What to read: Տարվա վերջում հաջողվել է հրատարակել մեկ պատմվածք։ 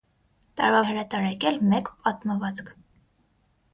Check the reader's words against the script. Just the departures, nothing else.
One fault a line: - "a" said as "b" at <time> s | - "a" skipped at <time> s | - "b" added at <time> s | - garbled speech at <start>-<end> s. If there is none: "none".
- "վերջում հաջողվել" skipped at 0.8 s